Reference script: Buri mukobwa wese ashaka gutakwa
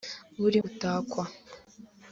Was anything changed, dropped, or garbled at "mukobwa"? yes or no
yes